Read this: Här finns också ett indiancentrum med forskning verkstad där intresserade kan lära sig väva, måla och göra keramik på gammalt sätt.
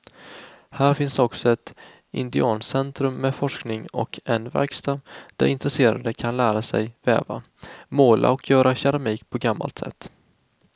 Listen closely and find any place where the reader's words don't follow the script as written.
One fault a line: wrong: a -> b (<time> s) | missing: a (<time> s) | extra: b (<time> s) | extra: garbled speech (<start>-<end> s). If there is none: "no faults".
extra: och en (3.9 s)